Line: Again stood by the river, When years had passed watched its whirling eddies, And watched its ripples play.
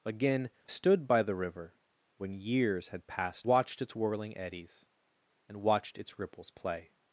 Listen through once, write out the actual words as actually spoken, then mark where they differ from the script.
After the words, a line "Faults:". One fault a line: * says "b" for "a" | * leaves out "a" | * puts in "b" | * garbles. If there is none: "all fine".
Again stood by the river, When years had passed watched its whirling eddies, And watched its ripples play.
Faults:
all fine